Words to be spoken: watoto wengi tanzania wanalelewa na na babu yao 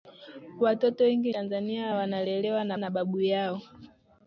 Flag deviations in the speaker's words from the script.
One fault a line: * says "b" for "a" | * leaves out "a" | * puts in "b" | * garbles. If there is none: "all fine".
all fine